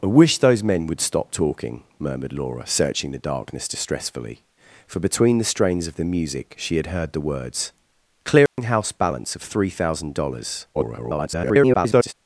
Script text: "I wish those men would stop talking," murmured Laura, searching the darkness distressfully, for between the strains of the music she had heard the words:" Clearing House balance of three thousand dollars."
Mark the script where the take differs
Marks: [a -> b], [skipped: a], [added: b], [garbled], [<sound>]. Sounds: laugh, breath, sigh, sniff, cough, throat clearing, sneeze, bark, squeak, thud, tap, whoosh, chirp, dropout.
"I wish those men would stop talking," murmured Laura, searching the darkness distressfully, for between the strains of the music she had heard the words:" Clearing [dropout] House balance of three thousand dollars." [garbled]